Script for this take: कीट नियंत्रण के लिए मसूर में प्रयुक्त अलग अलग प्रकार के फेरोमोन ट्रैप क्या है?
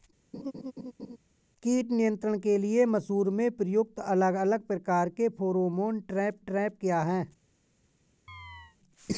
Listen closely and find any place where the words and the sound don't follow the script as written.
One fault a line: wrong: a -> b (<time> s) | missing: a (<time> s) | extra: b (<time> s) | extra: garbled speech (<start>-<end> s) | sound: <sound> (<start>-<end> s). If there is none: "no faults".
sound: laugh (0.3-1.2 s)
extra: ट्रैप (6.4 s)
sound: chirp (8.3-8.8 s)